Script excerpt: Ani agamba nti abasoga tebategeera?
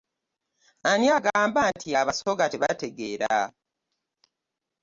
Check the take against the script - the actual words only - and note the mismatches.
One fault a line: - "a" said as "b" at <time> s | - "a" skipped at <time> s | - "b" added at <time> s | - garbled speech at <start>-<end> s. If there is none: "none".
none